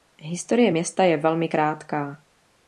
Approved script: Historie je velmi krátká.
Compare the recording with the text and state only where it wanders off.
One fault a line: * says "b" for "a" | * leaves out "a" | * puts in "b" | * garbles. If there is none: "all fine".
* puts in "města"